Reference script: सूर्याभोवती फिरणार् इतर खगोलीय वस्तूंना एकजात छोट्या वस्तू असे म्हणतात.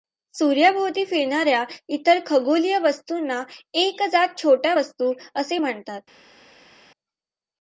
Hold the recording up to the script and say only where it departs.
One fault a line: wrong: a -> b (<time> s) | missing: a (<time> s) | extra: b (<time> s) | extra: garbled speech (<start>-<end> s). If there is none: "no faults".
extra: या (1.5 s)